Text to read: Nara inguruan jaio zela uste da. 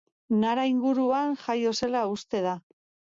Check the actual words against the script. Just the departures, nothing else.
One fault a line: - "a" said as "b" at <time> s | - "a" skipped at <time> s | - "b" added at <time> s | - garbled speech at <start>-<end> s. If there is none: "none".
none